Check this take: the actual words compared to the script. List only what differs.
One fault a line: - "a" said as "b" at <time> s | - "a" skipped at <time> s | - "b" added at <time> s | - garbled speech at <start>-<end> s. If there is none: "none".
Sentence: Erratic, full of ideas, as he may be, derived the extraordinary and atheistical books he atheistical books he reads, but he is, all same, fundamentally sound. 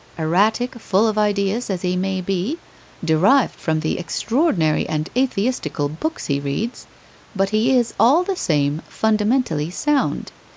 - "from" added at 3.6 s
- "atheistical books he" skipped at 6.4 s
- "the" added at 8.2 s